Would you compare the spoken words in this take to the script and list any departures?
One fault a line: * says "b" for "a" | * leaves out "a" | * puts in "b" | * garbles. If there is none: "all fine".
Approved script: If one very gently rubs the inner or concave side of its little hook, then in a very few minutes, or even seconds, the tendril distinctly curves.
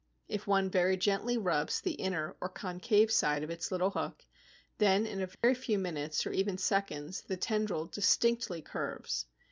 all fine